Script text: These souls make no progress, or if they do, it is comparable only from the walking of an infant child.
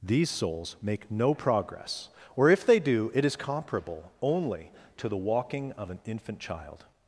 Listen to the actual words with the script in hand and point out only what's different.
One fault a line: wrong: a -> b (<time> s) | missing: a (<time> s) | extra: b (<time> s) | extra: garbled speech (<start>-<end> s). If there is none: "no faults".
wrong: from -> to (5.0 s)